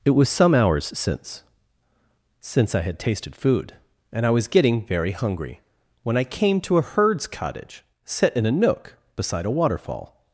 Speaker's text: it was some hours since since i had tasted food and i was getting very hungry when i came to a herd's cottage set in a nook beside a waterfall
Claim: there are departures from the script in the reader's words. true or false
false